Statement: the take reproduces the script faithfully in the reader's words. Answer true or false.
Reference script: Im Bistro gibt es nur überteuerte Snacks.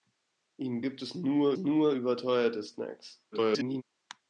false